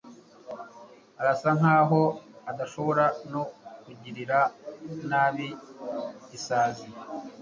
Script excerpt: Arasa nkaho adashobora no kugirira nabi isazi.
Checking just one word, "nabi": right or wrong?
right